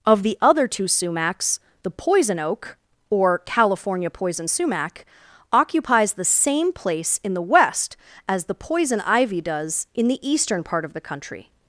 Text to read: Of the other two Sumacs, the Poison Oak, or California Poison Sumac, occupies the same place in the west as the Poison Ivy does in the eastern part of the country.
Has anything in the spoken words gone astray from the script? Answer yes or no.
no